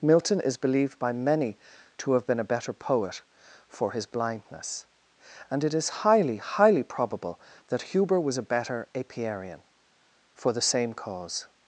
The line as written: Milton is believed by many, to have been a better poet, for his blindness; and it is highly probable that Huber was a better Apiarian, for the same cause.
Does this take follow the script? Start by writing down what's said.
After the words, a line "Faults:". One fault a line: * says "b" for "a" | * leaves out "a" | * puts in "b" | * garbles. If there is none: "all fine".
Milton is believed by many, to have been a better poet, for his blindness; and it is highly highly probable that Huber was a better Apiarian, for the same cause.
Faults:
* puts in "highly"